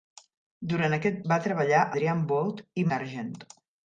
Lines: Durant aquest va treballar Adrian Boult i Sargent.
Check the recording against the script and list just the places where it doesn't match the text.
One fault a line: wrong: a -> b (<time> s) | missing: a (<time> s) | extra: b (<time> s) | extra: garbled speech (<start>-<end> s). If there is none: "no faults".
no faults